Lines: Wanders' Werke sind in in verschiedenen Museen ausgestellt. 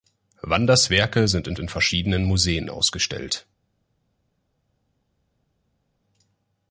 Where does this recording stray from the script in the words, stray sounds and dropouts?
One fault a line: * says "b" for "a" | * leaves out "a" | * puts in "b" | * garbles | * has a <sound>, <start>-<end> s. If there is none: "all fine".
all fine